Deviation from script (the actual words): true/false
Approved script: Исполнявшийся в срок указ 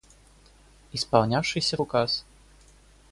true